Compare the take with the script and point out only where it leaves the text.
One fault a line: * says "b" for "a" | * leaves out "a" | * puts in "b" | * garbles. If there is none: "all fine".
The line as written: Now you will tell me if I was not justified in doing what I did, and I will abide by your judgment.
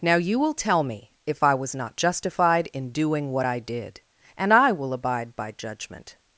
* leaves out "your"